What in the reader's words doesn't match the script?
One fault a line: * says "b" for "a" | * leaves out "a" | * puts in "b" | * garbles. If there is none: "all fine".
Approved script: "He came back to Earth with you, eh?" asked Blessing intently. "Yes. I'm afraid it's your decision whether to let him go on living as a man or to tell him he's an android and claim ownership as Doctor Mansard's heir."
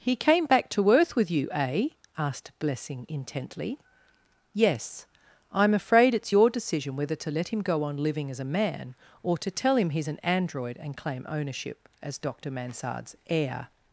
all fine